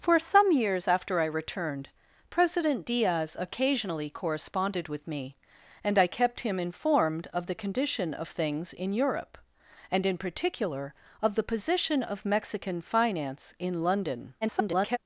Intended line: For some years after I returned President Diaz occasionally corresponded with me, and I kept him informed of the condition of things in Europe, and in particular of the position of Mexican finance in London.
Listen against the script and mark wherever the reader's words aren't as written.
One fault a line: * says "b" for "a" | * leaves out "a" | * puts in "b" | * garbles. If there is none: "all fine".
* garbles